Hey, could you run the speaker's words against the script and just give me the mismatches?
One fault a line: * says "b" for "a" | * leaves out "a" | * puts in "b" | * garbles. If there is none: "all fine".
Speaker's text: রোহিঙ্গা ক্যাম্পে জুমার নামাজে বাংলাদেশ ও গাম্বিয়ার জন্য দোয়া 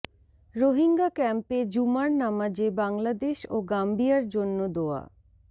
all fine